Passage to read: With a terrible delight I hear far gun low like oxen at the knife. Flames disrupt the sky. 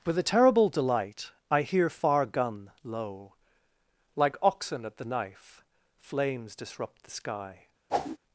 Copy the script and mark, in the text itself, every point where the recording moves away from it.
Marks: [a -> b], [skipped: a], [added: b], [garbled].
With a terrible delight I hear far gun low like oxen at the knife. Flames disrupt the sky.